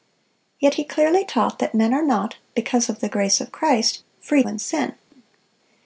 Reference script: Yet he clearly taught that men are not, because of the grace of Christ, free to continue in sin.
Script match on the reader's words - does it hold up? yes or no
no